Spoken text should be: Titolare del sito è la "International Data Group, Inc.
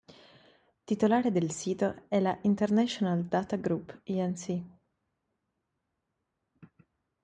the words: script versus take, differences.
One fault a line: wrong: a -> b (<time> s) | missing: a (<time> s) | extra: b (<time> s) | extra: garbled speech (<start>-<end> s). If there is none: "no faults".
no faults